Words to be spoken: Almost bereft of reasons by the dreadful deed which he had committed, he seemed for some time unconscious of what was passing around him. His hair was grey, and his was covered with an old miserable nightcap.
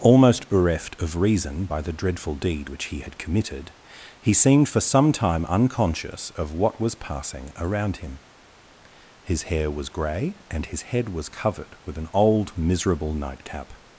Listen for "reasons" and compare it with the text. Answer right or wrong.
wrong